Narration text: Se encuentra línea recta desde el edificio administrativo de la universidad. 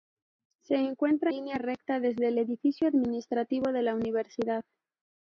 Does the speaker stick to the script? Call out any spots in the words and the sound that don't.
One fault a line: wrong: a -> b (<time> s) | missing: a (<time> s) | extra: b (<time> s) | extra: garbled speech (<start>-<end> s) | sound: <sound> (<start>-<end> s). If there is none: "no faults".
no faults